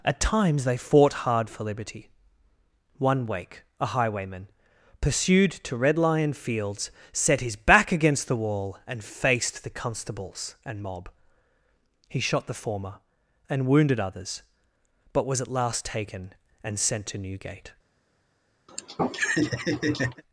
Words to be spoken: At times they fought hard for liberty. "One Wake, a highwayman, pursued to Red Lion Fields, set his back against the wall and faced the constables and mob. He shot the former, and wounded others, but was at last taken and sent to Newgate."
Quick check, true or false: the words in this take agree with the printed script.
true